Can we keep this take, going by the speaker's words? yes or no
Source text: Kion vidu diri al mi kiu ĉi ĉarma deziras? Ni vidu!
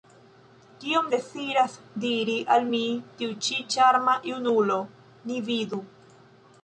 no